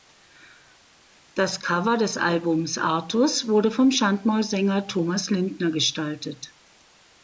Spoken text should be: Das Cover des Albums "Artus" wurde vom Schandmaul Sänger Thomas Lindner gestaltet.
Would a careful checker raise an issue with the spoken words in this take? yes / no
no